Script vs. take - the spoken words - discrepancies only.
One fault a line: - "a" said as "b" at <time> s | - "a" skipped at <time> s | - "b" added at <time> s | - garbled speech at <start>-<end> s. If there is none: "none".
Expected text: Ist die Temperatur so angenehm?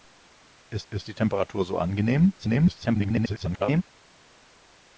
- "ist" added at 0.9 s
- garbled speech at 2.4-3.8 s